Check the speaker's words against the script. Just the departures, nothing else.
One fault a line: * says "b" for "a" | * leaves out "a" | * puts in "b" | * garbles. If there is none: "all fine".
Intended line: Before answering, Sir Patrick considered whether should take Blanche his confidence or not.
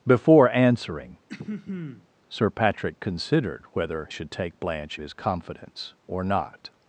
all fine